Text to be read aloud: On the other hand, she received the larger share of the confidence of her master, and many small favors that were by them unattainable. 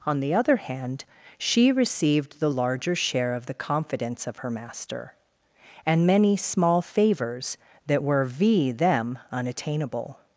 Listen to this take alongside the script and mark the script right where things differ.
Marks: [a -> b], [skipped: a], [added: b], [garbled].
On the other hand, she received the larger share of the confidence of her master, and many small favors that were [by -> v] them unattainable.